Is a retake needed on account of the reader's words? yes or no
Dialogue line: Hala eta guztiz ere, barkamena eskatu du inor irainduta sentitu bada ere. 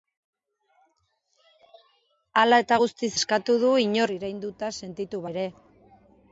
yes